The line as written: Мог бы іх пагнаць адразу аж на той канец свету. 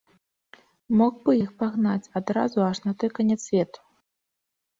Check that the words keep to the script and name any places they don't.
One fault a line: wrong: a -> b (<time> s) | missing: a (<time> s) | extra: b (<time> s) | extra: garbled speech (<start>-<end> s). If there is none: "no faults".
no faults